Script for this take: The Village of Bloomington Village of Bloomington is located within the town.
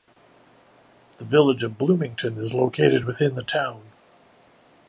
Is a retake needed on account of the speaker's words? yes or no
yes